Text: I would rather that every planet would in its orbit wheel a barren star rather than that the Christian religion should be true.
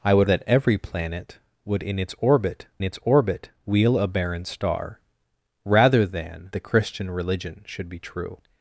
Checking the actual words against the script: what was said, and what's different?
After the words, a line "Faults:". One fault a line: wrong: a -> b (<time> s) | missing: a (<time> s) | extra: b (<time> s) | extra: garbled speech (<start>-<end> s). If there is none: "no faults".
I would that every planet would in its orbit its orbit wheel a barren star rather than the Christian religion should be true.
Faults:
missing: rather (0.3 s)
extra: its orbit (2.8 s)
missing: that (6.5 s)